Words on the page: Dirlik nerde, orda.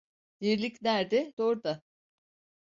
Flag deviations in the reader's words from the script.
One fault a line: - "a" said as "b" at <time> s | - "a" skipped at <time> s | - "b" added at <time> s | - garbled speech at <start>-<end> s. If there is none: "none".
none